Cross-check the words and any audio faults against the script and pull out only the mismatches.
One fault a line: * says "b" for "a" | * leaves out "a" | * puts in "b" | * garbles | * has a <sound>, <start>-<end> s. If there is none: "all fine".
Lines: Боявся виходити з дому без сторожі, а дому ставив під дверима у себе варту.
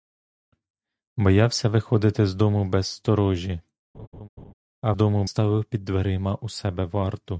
* has a laugh, 3.9-4.5 s